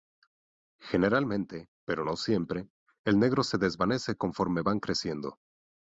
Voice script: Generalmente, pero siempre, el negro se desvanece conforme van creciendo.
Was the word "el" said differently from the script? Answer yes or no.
no